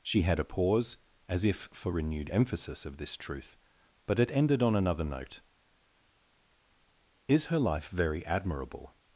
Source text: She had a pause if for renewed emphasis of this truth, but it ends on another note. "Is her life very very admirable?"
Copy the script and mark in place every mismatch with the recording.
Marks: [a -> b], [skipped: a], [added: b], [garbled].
She had a pause [added: as] if for renewed emphasis of this truth, but it [ends -> ended] on another note. "Is her life very [skipped: very] admirable?"